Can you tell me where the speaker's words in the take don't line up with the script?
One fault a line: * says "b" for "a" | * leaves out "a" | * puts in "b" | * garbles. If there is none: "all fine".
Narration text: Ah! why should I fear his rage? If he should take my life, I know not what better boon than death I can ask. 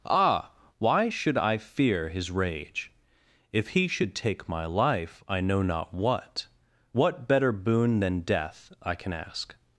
* puts in "what"